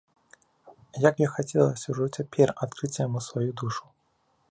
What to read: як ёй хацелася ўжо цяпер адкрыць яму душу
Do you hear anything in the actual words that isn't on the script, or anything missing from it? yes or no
yes